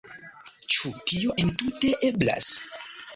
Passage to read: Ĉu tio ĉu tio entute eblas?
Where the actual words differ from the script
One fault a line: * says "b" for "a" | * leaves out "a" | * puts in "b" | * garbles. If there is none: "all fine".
* leaves out "ĉu tio"